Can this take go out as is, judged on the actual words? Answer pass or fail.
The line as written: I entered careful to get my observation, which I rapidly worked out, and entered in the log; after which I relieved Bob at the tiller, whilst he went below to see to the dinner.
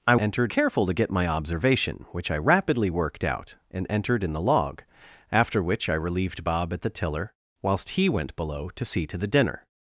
pass